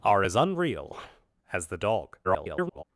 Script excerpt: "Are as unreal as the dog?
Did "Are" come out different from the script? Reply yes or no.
no